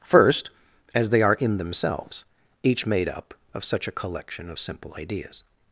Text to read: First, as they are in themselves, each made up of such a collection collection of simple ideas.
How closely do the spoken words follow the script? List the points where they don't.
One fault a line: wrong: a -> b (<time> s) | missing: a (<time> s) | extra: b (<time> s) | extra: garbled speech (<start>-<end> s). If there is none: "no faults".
missing: collection (4.5 s)